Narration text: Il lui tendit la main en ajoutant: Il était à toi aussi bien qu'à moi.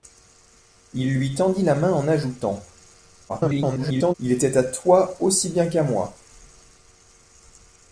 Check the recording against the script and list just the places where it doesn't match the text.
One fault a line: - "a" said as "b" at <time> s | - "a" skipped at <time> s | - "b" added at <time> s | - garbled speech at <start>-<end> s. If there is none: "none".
- garbled speech at 3.3-4.1 s